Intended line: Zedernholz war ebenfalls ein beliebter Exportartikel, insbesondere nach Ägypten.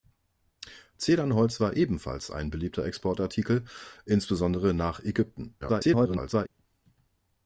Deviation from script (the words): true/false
true